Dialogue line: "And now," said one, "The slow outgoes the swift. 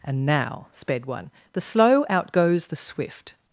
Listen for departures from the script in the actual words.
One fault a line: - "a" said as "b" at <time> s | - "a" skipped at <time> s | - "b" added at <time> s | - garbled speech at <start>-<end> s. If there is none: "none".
- "said" said as "sped" at 0.7 s